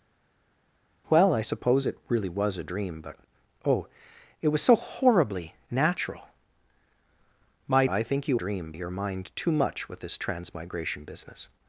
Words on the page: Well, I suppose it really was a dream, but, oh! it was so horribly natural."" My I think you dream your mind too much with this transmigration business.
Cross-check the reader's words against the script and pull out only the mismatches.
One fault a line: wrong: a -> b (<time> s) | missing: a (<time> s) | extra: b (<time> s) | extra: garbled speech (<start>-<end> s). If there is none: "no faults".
no faults